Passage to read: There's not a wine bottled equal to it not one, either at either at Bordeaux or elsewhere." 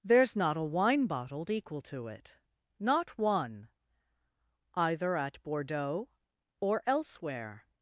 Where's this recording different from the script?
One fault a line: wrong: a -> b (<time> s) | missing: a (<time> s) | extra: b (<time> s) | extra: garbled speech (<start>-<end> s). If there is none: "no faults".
missing: either at (5.4 s)